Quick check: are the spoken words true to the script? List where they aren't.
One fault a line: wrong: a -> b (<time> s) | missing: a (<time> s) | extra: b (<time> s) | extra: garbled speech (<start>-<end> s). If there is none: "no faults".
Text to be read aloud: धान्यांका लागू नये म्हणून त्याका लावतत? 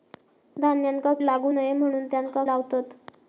no faults